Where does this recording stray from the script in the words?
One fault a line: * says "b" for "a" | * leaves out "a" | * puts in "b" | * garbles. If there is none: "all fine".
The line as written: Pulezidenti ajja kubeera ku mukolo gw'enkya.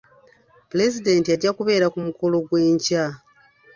all fine